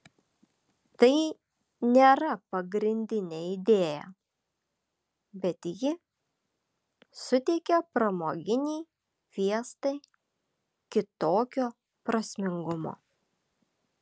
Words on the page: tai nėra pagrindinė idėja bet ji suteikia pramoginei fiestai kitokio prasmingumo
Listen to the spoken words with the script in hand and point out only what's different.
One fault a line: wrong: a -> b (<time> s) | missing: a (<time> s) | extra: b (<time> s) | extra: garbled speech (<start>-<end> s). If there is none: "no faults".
no faults